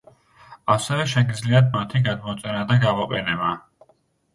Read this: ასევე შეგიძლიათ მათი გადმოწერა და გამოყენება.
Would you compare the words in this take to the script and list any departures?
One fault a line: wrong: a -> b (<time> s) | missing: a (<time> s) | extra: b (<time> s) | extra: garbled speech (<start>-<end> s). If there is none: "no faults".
no faults